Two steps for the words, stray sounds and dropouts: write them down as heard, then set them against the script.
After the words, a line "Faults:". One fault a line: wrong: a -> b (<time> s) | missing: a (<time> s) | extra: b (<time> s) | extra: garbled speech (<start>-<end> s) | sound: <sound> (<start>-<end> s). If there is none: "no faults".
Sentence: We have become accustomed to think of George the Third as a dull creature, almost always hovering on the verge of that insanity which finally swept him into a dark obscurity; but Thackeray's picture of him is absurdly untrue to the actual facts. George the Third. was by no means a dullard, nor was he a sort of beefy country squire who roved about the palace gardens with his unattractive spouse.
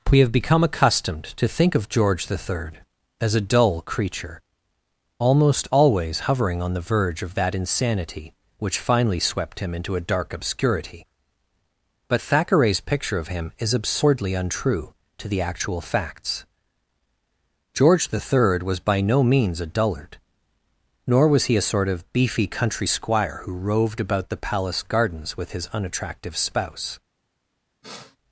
We have become accustomed to think of George the Third as a dull creature, almost always hovering on the verge of that insanity which finally swept him into a dark obscurity; but Thackeray's picture of him is absurdly untrue to the actual facts. George the Third. was by no means a dullard, nor was he a sort of beefy country squire who roved about the palace gardens with his unattractive spouse.
Faults:
sound: sniff (27.8-28.2 s)